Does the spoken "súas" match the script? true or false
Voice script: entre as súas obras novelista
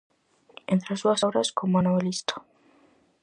true